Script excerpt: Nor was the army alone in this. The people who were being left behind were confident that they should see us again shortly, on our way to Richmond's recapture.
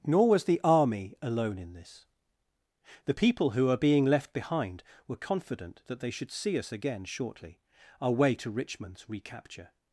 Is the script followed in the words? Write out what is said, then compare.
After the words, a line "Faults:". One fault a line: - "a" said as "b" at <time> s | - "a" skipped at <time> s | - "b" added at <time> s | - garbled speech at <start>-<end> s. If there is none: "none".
Nor was the army alone in this. The people who were being left behind were confident that they should see us again shortly, our way to Richmond's recapture.
Faults:
- "on" skipped at 7.6 s